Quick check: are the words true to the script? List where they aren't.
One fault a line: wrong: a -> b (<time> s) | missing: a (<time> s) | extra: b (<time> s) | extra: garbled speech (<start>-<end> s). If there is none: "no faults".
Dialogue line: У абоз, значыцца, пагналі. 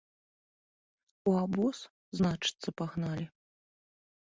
no faults